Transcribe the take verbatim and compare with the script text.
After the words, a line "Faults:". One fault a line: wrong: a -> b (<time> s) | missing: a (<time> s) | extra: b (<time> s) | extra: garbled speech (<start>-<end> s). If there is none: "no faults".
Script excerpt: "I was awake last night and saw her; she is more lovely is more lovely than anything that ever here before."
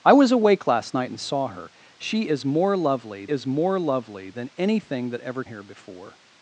"I was awake last night and saw her; she is more lovely is more lovely than anything that ever here before."
Faults:
no faults